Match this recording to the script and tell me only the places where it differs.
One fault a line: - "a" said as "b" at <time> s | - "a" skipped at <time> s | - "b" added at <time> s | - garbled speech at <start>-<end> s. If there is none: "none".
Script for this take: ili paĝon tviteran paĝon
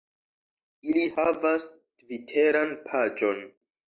- "paĝon" said as "havas" at 1.2 s